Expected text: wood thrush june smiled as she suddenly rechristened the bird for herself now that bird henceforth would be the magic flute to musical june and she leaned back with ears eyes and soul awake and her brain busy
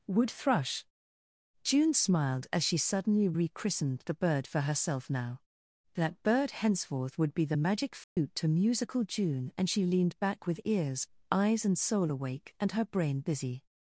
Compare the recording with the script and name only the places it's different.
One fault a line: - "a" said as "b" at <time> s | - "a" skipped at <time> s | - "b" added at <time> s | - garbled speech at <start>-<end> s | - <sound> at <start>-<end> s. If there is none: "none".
- dropout at 8.0-8.2 s